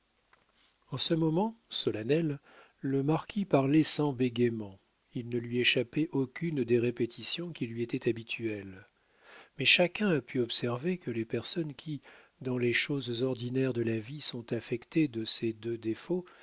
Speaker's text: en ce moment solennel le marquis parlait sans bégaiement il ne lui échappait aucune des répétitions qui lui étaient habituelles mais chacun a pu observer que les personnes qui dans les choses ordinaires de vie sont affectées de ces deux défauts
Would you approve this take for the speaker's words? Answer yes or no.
no